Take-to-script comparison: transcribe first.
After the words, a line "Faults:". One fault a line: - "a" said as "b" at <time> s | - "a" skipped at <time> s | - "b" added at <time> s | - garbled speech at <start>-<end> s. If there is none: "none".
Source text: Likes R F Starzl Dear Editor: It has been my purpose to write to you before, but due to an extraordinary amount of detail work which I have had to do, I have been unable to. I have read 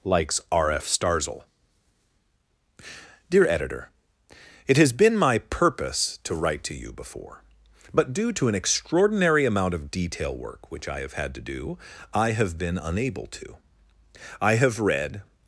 Likes R F Starzl Dear Editor: It has been my purpose to write to you before, but due to an extraordinary amount of detail work which I have had to do, I have been unable to. I have read
Faults:
none